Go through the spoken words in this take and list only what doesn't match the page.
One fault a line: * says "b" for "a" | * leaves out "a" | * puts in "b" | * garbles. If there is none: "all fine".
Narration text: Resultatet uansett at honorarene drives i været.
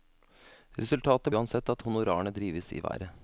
all fine